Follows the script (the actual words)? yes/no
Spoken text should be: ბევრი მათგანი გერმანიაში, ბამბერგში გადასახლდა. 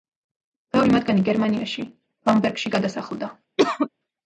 yes